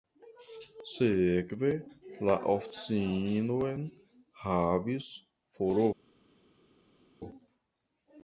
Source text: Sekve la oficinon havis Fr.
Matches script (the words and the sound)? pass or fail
pass